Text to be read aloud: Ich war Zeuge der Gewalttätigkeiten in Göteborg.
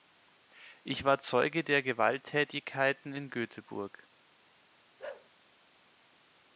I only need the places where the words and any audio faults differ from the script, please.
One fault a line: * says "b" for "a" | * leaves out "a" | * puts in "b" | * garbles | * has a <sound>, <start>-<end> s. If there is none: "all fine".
* has a bark, 5.0-5.3 s